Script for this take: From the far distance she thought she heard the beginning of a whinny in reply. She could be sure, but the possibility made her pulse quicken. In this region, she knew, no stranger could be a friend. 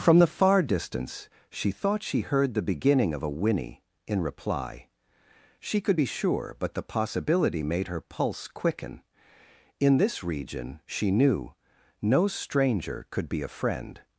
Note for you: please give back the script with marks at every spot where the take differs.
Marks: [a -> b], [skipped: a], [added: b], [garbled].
From the far distance she thought she heard the beginning of a whinny in reply. She could be sure, but the possibility made her pulse quicken. In this region, she knew, no stranger could be a friend.